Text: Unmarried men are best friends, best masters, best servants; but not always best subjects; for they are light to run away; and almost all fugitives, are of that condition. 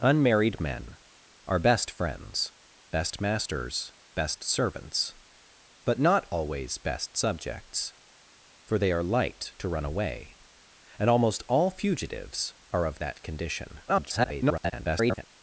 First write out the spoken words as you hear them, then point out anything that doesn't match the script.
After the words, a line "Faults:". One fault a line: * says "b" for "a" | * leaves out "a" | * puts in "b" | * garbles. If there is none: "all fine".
Unmarried men are best friends, best masters, best servants; but not always best subjects; for they are light to run away; and almost all fugitives, are of that condition. [garbled]
Faults:
* garbles